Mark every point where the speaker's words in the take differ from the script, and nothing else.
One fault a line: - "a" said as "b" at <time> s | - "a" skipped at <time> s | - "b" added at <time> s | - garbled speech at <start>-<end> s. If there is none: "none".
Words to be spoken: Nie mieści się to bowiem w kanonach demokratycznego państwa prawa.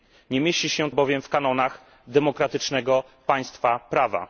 - "to" skipped at 0.9 s